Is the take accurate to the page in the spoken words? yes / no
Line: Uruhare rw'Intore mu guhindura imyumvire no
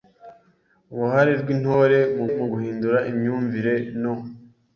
no